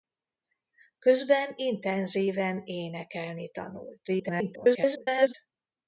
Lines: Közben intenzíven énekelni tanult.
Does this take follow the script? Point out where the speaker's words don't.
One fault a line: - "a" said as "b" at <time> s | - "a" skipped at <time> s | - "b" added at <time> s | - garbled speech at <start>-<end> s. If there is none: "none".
- garbled speech at 4.1-5.3 s